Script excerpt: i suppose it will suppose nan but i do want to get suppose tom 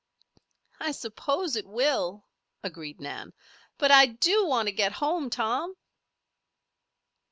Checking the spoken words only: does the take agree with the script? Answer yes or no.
no